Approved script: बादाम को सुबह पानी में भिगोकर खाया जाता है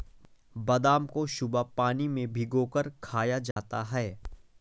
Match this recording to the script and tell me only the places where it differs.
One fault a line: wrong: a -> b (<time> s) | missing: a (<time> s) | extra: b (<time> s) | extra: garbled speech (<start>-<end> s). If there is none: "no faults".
no faults